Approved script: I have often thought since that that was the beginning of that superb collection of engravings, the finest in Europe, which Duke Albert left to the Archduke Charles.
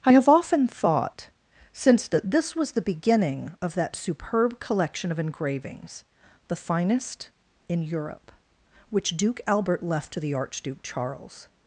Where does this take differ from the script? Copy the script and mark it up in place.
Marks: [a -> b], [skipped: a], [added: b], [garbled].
I have often thought since that [that -> this] was the beginning of that superb collection of engravings, the finest in Europe, which Duke Albert left to the Archduke Charles.